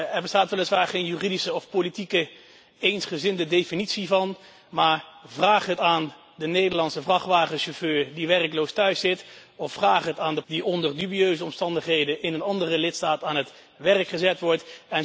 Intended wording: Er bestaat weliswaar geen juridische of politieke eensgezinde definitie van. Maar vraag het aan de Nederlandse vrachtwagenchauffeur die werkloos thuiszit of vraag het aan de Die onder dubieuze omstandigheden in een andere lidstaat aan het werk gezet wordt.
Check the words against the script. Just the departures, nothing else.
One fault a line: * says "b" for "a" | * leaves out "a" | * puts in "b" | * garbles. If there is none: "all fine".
all fine